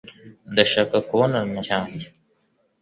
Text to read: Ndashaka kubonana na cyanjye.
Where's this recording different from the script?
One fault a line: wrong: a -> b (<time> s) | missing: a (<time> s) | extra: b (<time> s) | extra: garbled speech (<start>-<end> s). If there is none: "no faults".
no faults